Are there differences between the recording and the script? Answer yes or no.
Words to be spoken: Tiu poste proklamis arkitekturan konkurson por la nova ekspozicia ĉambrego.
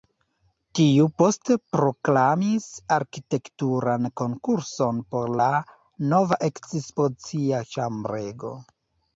no